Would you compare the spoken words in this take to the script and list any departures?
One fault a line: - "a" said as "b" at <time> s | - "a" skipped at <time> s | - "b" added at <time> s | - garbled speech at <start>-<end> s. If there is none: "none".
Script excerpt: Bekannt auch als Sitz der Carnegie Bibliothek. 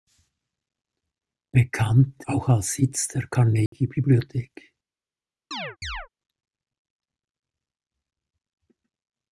none